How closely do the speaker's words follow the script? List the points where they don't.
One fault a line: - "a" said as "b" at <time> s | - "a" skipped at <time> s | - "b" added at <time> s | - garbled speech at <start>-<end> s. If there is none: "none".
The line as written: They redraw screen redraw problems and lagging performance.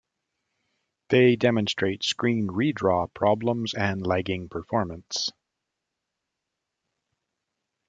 - "redraw" said as "demonstrate" at 1.4 s